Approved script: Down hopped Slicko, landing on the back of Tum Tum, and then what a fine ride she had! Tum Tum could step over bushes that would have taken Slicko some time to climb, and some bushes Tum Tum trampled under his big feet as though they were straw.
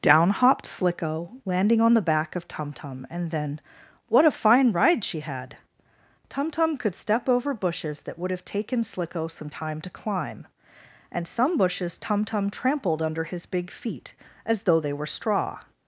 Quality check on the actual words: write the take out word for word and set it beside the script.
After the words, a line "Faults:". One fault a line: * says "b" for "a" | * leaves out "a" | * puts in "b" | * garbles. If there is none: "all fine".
Down hopped Slicko, landing on the back of Tum Tum, and then what a fine ride she had! Tum Tum could step over bushes that would have taken Slicko some time to climb, and some bushes Tum Tum trampled under his big feet as though they were straw.
Faults:
all fine